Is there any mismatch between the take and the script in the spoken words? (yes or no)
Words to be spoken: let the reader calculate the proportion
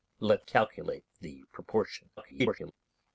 yes